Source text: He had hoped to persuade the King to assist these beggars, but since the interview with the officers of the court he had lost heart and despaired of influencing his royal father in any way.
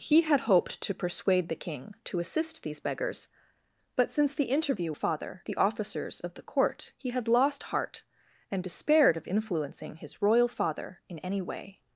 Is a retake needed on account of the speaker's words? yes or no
yes